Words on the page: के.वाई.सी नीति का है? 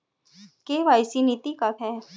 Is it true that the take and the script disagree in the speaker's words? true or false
false